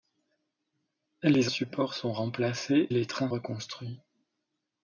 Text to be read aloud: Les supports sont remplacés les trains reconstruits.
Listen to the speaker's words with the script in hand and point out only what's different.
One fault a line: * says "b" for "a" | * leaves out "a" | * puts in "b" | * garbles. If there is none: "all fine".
all fine